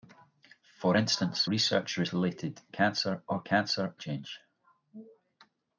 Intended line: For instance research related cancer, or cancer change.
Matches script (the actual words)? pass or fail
pass